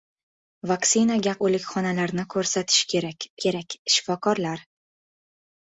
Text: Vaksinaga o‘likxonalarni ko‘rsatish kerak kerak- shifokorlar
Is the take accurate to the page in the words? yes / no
yes